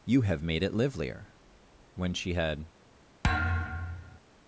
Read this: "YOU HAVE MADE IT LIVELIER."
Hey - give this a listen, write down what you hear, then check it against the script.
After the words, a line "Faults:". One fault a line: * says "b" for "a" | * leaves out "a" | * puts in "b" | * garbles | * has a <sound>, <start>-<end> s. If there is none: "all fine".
"YOU HAVE MADE IT LIVELIER." When she had
Faults:
* puts in "When she had"
* has a thud, 3.2-4.2 s